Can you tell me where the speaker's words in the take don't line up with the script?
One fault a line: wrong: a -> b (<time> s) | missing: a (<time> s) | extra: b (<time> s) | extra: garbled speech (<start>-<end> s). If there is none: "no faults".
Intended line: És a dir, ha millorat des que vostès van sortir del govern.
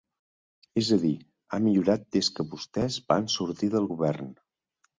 no faults